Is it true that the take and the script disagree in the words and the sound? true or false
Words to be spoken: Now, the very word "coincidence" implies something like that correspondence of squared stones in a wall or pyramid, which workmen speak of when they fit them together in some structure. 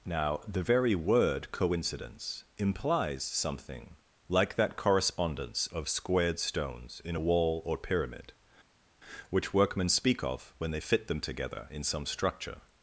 false